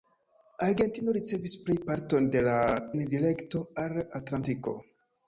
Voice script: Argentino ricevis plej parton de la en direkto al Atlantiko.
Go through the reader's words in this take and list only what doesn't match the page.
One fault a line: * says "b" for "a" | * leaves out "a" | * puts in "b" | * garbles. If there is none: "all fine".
all fine